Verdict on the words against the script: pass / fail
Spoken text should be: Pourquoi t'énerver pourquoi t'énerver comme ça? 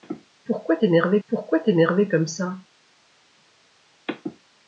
pass